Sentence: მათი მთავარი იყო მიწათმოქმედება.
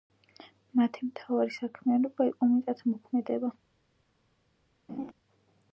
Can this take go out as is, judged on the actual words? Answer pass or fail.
fail